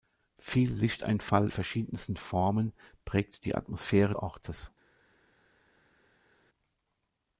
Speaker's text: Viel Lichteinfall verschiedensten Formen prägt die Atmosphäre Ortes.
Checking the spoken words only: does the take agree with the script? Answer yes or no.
yes